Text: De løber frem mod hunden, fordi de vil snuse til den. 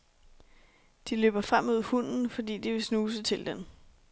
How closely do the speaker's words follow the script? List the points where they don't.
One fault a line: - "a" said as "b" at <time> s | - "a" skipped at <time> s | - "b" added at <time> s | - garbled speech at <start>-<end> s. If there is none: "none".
none